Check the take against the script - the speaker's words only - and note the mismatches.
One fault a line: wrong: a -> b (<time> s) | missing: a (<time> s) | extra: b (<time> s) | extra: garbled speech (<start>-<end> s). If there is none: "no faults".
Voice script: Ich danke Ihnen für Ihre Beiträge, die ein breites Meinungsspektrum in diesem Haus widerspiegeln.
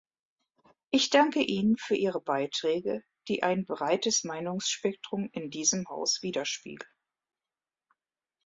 no faults